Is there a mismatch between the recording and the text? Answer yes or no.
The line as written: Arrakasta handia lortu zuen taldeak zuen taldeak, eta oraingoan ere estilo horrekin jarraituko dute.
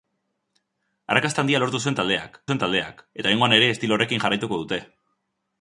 no